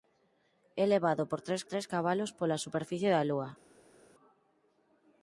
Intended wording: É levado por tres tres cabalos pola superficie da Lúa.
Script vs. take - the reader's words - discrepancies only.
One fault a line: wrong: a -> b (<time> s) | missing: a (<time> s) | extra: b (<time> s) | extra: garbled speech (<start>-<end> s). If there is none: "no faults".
no faults